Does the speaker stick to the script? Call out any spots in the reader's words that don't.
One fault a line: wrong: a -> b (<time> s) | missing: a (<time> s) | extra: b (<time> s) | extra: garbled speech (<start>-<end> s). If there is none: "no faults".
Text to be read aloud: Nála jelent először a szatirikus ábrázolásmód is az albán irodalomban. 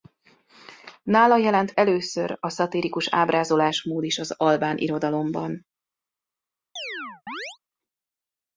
no faults